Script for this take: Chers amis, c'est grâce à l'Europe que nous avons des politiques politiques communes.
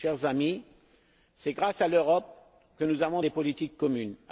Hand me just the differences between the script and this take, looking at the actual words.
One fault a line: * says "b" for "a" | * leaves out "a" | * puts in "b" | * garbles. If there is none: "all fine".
* leaves out "politiques"